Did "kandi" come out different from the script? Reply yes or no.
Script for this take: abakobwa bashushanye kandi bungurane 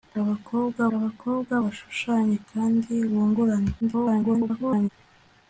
no